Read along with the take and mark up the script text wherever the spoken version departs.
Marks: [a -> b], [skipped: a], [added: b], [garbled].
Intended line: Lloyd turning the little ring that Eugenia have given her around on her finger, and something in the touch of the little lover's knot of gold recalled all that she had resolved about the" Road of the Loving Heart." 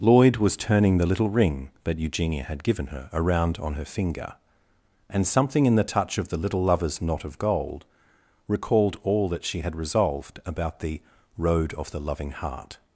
Lloyd [added: was] turning the little ring that Eugenia [have -> had] given her around on her finger, and something in the touch of the little lover's knot of gold recalled all that she had resolved about the" Road of the Loving Heart."